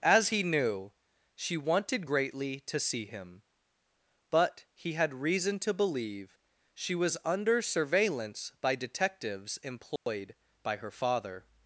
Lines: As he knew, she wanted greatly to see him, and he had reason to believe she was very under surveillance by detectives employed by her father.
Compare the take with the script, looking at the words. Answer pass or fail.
fail